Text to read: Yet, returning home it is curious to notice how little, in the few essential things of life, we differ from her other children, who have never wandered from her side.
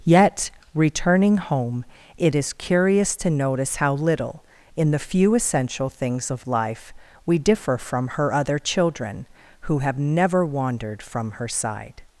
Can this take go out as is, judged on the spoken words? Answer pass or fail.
pass